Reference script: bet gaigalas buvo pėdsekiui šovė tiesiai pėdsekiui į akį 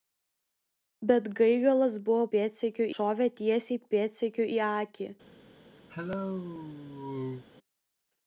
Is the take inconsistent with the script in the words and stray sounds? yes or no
yes